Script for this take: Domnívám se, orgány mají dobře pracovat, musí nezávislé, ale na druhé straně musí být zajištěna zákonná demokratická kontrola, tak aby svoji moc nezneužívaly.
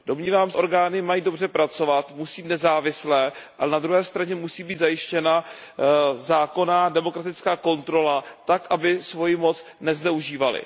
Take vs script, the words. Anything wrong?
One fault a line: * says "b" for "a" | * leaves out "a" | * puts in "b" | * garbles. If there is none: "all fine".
all fine